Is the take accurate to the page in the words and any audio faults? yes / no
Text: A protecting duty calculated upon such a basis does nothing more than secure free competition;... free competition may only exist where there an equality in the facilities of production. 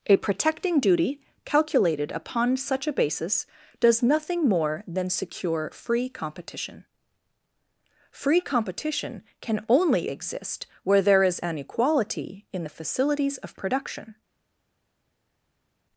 no